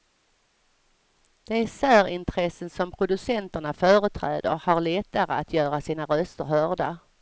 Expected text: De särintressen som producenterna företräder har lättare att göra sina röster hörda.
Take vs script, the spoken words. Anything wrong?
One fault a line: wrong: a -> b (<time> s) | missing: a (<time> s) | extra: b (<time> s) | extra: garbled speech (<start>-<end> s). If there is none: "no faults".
no faults